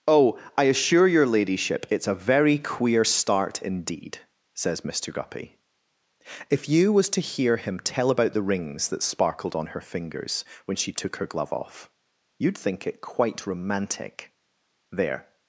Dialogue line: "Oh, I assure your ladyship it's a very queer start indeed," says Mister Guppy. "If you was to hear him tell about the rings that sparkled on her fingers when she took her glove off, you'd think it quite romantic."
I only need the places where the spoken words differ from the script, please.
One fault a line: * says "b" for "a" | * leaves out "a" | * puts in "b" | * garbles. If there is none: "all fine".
* puts in "There"